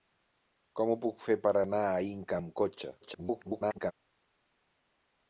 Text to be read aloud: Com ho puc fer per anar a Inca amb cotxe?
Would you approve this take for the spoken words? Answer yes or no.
no